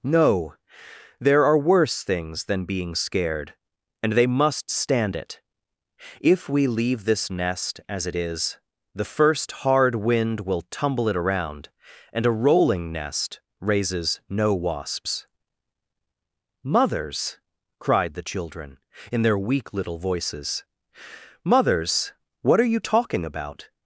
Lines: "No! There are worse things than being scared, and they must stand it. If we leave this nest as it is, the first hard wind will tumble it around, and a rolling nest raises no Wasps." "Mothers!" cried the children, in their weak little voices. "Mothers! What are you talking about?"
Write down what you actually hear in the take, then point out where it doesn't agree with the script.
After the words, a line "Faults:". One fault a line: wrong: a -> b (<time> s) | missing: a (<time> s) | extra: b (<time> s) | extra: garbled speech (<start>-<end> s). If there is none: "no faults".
"No! There are worse things than being scared, and they must stand it. If we leave this nest as it is, the first hard wind will tumble it around, and a rolling nest raises no Wasps." "Mothers!" cried the children, in their weak little voices. "Mothers! What are you talking about?"
Faults:
no faults